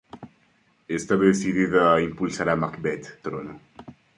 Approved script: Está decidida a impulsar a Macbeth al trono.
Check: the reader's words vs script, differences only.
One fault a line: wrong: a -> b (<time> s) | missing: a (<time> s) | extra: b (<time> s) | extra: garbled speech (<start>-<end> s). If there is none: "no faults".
missing: al (3.2 s)